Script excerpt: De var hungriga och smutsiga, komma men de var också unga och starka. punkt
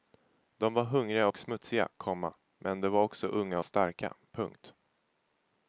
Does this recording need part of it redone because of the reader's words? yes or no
no